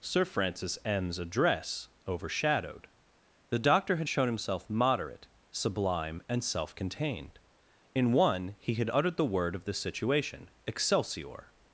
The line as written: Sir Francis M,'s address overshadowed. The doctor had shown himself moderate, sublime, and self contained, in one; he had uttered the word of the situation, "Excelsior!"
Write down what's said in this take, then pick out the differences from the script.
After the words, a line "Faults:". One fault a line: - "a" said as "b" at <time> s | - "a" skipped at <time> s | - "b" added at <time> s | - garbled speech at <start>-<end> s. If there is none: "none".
Sir Francis M,'s address overshadowed. The doctor had shown himself moderate, sublime, and self contained, in one; he had uttered the word of the situation, "Excelsior!"
Faults:
none